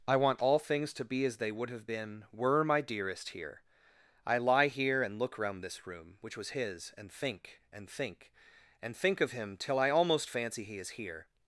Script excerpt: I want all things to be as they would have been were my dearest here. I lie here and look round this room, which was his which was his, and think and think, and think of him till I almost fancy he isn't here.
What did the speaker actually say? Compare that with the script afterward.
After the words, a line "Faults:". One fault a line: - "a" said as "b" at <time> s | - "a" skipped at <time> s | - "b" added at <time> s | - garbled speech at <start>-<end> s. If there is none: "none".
I want all things to be as they would have been were my dearest here. I lie here and look round this room, which was his, and think and think, and think of him till I almost fancy he is here.
Faults:
- "which was his" skipped at 6.9 s
- "isn't" said as "is" at 10.8 s